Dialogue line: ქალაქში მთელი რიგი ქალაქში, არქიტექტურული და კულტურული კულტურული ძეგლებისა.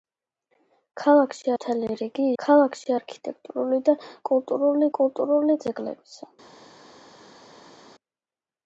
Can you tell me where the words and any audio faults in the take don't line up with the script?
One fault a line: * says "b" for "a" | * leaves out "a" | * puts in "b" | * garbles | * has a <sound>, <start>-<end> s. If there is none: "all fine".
all fine